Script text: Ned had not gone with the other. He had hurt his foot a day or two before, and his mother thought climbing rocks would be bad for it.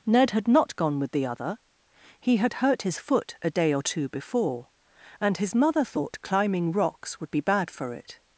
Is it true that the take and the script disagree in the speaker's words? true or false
false